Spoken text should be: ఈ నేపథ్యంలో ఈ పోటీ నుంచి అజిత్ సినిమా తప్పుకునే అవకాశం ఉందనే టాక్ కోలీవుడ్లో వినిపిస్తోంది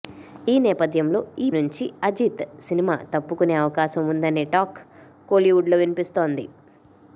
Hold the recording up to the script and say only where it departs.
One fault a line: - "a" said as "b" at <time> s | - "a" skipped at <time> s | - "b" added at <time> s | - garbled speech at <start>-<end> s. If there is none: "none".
- "పోటీ" skipped at 1.5 s